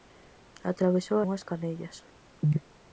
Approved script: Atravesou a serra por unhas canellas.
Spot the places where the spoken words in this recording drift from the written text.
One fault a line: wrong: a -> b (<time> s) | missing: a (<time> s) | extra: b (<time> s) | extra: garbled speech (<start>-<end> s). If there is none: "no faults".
missing: a serra por (1.2 s)